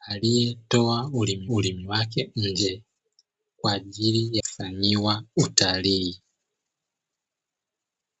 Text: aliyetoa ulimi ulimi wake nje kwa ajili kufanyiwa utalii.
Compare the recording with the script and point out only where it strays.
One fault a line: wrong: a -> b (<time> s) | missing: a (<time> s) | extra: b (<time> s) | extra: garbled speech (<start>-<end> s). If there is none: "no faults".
no faults